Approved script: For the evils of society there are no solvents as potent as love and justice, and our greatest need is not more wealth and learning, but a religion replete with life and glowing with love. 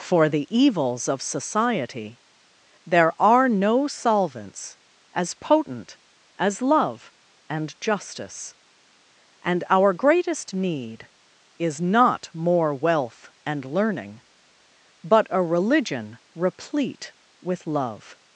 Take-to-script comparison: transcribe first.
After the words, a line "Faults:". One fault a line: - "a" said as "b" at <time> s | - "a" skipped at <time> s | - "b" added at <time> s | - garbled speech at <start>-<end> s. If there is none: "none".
For the evils of society there are no solvents as potent as love and justice, and our greatest need is not more wealth and learning, but a religion replete with love.
Faults:
- "life and glowing with" skipped at 17.7 s